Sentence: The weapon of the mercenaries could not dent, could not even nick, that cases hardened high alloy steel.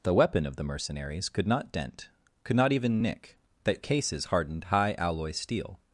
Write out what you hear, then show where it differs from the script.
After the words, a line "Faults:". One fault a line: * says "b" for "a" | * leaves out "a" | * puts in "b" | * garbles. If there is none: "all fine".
The weapon of the mercenaries could not dent, could not even nick, that cases hardened high alloy steel.
Faults:
all fine